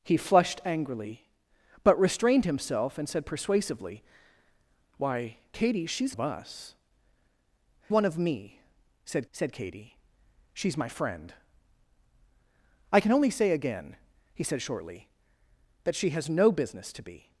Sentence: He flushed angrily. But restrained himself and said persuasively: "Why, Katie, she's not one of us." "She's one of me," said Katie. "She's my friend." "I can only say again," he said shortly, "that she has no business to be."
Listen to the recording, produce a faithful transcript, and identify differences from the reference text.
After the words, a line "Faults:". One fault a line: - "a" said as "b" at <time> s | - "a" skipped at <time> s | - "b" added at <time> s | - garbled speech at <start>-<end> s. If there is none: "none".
He flushed angrily. But restrained himself and said persuasively: "Why, Katie, she's of us." "One of me," said said Katie. "She's my friend." "I can only say again," he said shortly, "that she has no business to be."
Faults:
- "not one" skipped at 6.2 s
- "She's" skipped at 6.7 s
- "said" added at 9.3 s